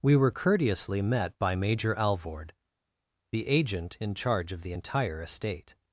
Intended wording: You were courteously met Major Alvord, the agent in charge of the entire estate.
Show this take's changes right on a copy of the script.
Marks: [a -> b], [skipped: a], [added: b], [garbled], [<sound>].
[You -> We] were courteously met [added: by] Major Alvord, the agent in charge of the entire estate.